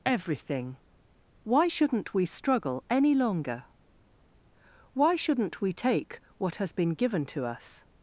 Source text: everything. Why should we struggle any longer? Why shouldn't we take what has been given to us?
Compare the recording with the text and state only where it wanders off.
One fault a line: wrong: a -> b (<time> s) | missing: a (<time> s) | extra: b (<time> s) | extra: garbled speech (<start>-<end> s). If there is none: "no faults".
wrong: should -> shouldn't (1.6 s)